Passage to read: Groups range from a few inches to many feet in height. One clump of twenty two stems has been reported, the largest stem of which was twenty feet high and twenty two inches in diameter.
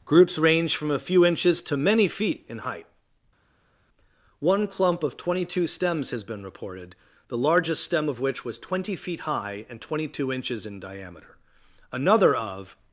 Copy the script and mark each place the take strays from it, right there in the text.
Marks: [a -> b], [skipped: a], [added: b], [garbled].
Groups range from a few inches to many feet in height. One clump of twenty two stems has been reported, the largest stem of which was twenty feet high and twenty two inches in diameter. [added: Another of]